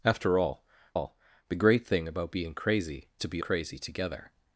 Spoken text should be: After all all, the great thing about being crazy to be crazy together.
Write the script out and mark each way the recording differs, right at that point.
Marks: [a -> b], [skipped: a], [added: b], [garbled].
After all all, the great thing about being crazy to be crazy together.